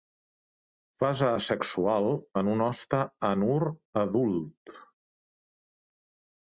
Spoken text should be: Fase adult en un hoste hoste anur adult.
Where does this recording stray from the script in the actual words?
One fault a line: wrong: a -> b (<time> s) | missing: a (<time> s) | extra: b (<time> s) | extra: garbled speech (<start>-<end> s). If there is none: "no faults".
wrong: adult -> asexual (1.4 s)
missing: hoste (3.0 s)